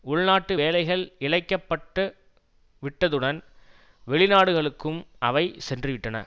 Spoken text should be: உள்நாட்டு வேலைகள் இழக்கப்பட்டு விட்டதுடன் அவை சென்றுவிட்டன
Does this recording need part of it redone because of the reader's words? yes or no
yes